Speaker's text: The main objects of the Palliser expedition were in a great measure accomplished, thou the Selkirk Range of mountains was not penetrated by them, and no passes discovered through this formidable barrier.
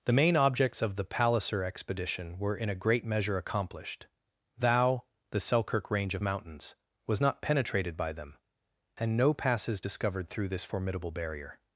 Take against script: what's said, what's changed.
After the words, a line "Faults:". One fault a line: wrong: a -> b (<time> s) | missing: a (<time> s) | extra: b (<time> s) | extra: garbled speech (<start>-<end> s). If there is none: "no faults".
The main objects of the Palliser expedition were in a great measure accomplished, thou the Selkirk Range of mountains was not penetrated by them, and no passes discovered through this formidable barrier.
Faults:
no faults